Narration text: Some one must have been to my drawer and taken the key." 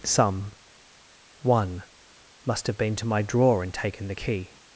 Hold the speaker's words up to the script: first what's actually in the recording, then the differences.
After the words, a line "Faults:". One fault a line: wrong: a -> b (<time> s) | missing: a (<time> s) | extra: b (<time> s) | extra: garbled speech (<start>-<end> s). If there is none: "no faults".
Some one must have been to my drawer and taken the key."
Faults:
no faults